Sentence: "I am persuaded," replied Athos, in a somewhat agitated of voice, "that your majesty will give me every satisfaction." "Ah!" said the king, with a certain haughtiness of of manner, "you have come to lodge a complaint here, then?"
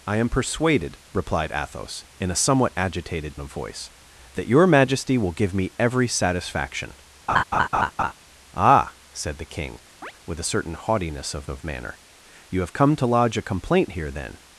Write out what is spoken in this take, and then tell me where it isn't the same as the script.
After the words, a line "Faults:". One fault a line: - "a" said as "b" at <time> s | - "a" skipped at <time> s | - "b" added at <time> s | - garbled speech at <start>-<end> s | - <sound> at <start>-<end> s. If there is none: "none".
"I am persuaded," replied Athos, in a somewhat agitated of voice, "that your majesty will give me every satisfaction." "Ah!" said the king, with a certain haughtiness of of manner, "you have come to lodge a complaint here, then?"
Faults:
- laugh at 7.3-8.1 s
- chirp at 10.0-10.1 s